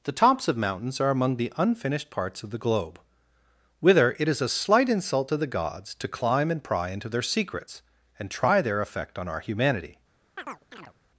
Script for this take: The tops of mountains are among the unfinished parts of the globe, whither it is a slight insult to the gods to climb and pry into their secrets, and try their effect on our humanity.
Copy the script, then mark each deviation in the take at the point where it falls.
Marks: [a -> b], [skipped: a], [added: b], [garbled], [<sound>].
The tops of mountains are among the unfinished parts of the globe, whither it is a slight insult to the gods to climb and pry into their secrets, and try their effect on our humanity. [chirp]